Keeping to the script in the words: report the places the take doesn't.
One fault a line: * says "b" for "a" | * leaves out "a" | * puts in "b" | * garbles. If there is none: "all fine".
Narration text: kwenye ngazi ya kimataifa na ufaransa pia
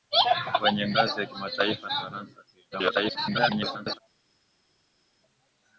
* leaves out "na"
* garbles